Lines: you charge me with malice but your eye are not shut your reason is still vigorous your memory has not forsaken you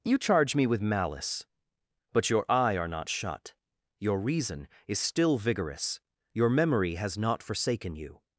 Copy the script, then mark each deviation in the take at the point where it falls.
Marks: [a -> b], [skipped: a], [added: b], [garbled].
you charge me with malice but your eye are not shut your reason is still vigorous your memory has not forsaken you